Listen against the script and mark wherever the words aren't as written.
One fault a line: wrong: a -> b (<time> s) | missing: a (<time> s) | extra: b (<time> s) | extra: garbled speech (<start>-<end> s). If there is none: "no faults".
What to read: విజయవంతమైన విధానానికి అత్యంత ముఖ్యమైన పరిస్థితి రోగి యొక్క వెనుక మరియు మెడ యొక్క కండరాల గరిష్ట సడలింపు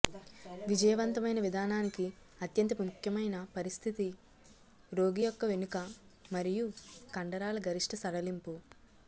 missing: మెడ యొక్క (6.7 s)